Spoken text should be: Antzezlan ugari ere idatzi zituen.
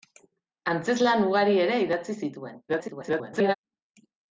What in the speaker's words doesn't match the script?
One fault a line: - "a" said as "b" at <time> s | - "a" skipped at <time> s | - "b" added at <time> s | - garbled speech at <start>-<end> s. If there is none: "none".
- garbled speech at 2.7-3.5 s